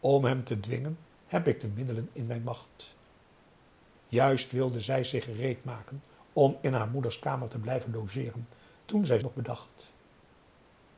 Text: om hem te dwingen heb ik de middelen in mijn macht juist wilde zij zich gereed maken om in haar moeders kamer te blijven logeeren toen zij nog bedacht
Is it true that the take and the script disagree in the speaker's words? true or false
false